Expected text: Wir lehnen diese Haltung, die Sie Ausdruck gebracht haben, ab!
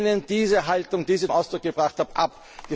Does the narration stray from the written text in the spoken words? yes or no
no